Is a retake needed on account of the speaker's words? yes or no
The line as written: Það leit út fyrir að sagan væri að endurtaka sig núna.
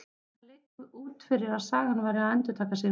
no